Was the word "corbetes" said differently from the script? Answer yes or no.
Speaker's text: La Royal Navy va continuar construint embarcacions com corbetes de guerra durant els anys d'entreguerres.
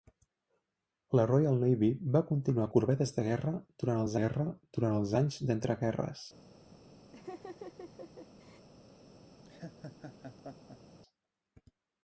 yes